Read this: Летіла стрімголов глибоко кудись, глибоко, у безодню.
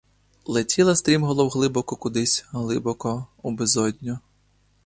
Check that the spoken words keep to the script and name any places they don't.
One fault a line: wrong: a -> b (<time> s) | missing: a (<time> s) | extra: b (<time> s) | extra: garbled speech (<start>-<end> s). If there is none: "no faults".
no faults